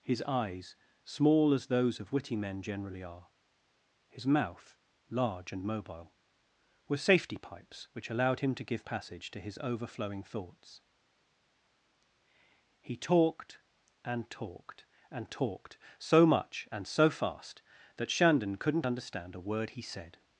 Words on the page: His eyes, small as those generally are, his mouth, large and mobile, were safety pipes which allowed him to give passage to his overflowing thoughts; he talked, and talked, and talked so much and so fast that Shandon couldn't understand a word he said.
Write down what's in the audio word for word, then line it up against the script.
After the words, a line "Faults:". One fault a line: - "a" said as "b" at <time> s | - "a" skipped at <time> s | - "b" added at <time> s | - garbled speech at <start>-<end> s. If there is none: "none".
His eyes, small as those of witty men generally are, his mouth, large and mobile, were safety pipes which allowed him to give passage to his overflowing thoughts; he talked, and talked, and talked so much and so fast that Shandon couldn't understand a word he said.
Faults:
- "of witty men" added at 2.0 s